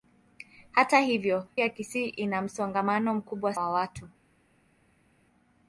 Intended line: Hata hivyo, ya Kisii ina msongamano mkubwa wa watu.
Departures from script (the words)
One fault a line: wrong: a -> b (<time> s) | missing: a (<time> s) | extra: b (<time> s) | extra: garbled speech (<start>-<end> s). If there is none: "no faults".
no faults